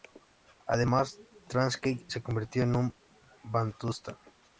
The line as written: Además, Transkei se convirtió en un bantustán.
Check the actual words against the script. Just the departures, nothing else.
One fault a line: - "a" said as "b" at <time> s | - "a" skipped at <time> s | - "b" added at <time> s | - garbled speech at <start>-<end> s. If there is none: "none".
none